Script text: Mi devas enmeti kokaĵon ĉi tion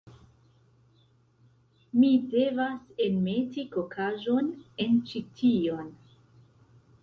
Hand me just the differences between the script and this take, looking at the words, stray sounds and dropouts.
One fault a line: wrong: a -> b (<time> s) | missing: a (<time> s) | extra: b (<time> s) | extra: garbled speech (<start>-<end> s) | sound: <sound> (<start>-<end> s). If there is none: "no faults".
extra: en (4.9 s)